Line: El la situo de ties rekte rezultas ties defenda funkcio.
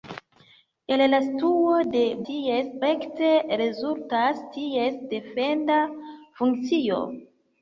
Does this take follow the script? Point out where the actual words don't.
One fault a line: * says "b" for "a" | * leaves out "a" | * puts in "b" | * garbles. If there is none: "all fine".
all fine